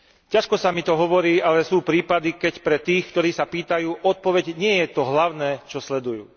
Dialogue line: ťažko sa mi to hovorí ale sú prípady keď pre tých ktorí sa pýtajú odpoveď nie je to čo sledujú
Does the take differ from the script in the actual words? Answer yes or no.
yes